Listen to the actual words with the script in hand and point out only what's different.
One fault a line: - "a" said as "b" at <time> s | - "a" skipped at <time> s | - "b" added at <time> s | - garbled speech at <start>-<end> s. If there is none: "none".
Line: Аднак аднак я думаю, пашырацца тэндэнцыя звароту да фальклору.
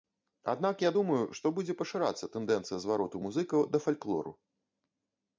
- "аднак" skipped at 0.8 s
- "што будзе" added at 1.4 s
- "музыкаў" added at 3.3 s